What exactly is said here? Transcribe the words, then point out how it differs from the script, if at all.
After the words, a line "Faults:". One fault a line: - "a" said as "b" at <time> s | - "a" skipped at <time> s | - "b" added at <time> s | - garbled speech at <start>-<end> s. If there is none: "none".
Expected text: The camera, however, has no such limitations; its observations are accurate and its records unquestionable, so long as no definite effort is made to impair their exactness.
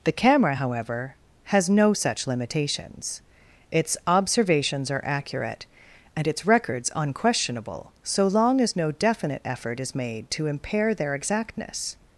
The camera, however, has no such limitations; its observations are accurate and its records unquestionable, so long as no definite effort is made to impair their exactness.
Faults:
none